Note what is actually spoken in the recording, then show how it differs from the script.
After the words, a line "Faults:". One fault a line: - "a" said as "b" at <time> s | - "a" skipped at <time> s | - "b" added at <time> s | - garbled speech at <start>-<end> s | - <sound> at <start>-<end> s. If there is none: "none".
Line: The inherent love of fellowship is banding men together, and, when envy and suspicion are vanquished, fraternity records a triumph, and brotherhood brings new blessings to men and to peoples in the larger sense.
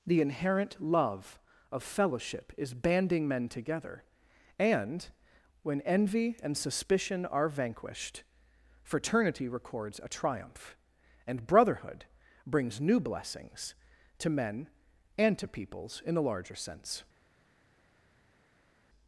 The inherent love of fellowship is banding men together, and, when envy and suspicion are vanquished, fraternity records a triumph, and brotherhood brings new blessings to men and to peoples in a larger sense.
Faults:
- "the" said as "a" at 16.2 s